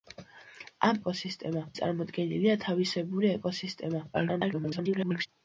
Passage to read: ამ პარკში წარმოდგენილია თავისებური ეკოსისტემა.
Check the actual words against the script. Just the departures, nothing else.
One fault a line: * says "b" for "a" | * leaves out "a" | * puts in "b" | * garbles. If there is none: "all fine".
* says "ეკოსისტემა" for "პარკში"
* garbles